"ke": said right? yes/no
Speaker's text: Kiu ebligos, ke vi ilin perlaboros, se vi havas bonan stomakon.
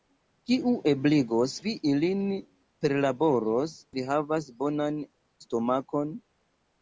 no